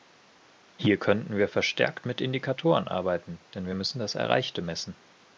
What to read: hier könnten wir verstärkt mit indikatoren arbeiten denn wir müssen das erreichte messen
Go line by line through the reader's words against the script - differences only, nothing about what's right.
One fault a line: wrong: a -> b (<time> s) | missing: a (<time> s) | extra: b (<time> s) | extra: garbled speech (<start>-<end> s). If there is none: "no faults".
no faults